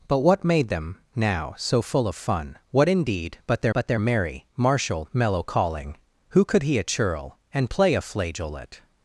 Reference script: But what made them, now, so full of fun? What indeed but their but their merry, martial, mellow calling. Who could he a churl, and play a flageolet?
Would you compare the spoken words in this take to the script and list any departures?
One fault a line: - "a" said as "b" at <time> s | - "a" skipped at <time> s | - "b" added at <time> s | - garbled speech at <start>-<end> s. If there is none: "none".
none